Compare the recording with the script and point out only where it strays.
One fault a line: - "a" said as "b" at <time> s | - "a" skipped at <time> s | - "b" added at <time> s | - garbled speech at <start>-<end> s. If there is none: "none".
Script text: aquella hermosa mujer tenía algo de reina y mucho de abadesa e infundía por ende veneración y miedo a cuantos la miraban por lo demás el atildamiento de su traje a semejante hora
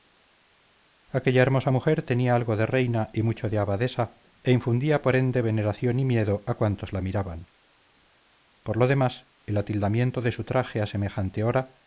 none